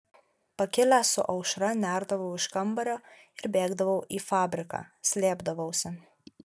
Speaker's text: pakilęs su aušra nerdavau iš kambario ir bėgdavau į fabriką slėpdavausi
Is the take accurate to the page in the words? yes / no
yes